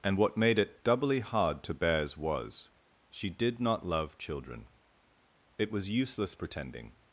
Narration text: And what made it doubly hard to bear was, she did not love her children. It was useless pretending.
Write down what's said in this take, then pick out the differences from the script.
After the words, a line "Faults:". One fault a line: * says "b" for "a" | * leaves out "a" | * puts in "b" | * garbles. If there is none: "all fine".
And what made it doubly hard to bears was, she did not love children. It was useless pretending.
Faults:
* says "bears" for "bear"
* leaves out "her"